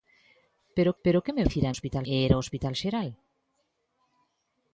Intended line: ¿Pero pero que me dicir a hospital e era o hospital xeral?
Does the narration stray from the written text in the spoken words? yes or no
no